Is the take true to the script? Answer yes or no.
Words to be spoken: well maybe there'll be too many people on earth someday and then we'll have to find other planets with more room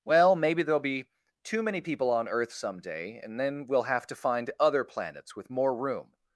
yes